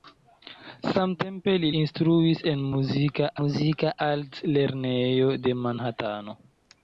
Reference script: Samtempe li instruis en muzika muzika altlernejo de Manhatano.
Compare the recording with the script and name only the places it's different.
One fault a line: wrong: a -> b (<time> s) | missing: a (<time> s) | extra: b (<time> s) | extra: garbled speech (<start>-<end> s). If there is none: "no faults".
no faults